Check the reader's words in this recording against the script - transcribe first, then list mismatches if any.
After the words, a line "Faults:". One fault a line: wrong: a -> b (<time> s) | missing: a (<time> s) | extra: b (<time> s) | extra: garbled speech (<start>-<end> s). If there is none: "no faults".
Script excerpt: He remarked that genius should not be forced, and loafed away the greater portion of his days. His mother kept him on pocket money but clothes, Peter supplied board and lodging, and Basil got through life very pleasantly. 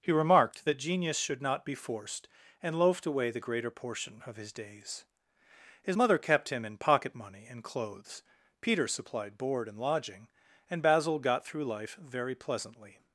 He remarked that genius should not be forced, and loafed away the greater portion of his days. His mother kept him in pocket money and clothes, Peter supplied board and lodging, and Basil got through life very pleasantly.
Faults:
wrong: on -> in (6.7 s)
wrong: but -> and (7.5 s)